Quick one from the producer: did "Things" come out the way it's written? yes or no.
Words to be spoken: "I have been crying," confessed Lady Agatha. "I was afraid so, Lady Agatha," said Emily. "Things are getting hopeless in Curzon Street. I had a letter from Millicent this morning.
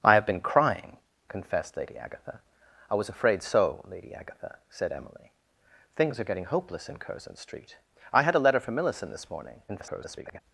yes